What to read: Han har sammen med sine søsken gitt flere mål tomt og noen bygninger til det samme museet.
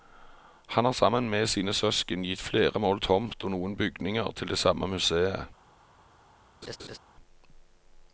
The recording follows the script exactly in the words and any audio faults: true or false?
false